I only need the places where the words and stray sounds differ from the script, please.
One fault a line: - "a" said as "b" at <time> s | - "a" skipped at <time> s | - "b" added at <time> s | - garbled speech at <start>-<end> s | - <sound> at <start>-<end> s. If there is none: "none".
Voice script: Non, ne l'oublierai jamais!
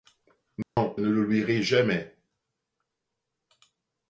- dropout at 0.6-0.8 s